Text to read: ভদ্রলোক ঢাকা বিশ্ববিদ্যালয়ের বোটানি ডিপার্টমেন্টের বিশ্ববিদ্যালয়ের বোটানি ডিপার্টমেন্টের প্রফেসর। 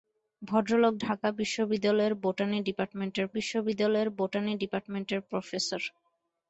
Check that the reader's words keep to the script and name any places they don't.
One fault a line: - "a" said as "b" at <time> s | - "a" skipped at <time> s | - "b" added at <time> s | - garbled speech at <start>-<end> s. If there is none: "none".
none